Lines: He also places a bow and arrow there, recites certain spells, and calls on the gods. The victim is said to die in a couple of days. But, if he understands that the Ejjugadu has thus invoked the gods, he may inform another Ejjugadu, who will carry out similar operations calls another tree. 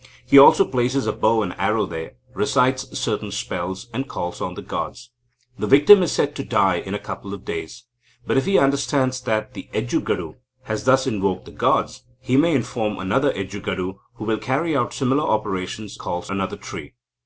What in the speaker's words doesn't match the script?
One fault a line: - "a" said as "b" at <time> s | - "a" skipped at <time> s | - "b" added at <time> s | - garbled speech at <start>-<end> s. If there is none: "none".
none